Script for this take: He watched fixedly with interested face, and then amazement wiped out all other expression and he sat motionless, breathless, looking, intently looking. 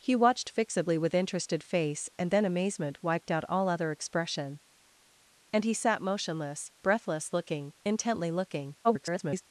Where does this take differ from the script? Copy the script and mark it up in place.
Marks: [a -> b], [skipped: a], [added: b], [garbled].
He watched fixedly with interested face, and then amazement wiped out all other expression and he sat motionless, breathless, looking, intently looking. [garbled]